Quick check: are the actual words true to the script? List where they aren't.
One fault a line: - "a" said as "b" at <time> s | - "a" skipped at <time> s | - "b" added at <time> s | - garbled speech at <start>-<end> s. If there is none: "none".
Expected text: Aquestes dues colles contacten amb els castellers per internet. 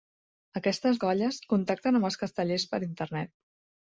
- "dues" skipped at 1.0 s